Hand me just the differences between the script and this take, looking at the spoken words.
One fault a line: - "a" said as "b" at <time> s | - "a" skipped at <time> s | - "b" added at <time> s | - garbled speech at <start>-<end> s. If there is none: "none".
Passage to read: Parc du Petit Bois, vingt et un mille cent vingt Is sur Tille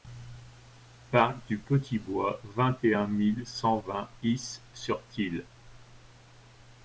none